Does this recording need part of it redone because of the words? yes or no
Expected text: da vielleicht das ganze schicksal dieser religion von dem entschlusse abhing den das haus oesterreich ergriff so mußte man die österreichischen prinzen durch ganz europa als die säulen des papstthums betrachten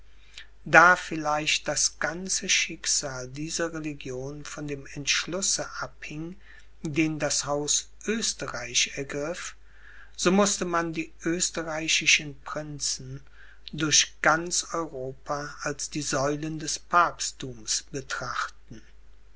no